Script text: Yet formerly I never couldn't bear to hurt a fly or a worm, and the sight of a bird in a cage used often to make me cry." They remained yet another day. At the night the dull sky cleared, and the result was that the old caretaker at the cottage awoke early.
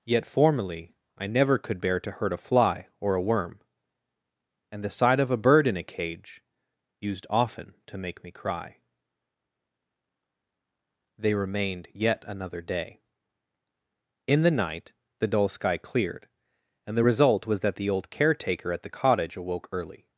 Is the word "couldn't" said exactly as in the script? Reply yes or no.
no